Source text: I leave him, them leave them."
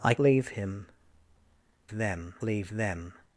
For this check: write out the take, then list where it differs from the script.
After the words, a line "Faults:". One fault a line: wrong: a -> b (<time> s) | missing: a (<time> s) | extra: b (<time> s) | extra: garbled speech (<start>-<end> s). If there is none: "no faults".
I leave him, them leave them."
Faults:
no faults